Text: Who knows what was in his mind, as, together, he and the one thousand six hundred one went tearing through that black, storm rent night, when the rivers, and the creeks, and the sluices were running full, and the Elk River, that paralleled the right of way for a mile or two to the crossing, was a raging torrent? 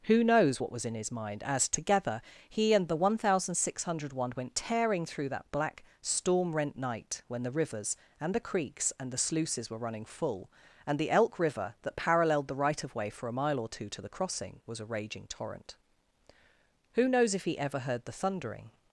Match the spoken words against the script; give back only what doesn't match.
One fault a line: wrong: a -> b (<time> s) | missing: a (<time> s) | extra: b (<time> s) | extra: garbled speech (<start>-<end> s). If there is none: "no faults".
extra: Who knows if he ever heard the thundering (16.9 s)